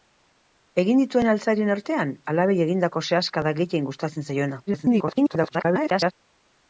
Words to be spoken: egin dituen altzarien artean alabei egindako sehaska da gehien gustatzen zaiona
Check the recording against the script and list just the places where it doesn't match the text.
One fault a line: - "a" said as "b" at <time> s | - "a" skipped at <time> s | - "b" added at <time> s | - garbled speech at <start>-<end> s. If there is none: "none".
- garbled speech at 4.7-6.1 s